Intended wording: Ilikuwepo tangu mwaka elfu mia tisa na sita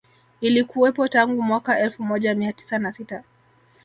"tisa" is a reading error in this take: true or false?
false